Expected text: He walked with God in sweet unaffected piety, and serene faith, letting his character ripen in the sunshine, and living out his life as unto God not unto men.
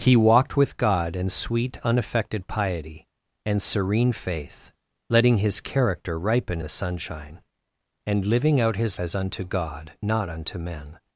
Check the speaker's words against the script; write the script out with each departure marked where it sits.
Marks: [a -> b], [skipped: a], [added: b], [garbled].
He walked with God in sweet unaffected piety, and serene faith, letting his character ripen [skipped: in] the sunshine, and living out his [skipped: life] as unto God not unto men.